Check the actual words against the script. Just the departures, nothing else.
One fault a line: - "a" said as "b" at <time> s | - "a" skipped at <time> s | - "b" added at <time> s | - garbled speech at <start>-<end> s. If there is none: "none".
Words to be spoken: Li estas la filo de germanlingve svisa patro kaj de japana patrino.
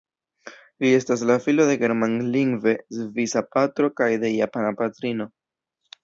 none